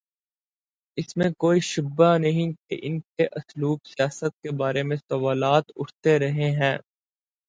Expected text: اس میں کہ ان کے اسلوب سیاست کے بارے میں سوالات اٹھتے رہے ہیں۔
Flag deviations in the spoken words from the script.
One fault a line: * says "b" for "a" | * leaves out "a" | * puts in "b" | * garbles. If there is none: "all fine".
* puts in "کوئی شبہ نہیں"